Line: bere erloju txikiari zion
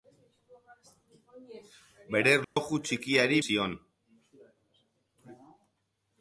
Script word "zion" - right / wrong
right